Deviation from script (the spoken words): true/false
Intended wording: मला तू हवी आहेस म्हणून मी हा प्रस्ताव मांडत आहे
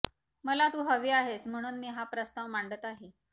false